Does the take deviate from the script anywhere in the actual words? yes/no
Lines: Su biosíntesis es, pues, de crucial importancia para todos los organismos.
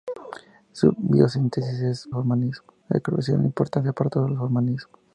yes